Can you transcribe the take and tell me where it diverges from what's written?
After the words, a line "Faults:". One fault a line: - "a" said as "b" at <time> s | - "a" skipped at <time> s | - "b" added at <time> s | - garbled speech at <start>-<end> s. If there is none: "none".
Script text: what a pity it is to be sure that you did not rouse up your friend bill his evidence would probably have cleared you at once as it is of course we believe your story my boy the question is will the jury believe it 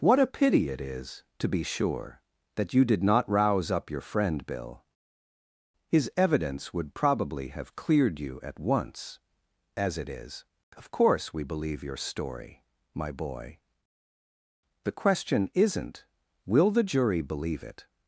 what a pity it is to be sure that you did not rouse up your friend bill his evidence would probably have cleared you at once as it is of course we believe your story my boy the question isn't will the jury believe it
Faults:
- "is" said as "isn't" at 15.5 s